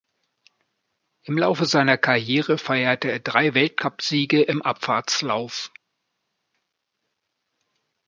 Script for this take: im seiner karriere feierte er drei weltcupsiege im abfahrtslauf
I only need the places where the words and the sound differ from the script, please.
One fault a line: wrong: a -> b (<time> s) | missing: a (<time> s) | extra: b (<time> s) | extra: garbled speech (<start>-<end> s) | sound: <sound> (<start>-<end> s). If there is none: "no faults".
extra: laufe (1.4 s)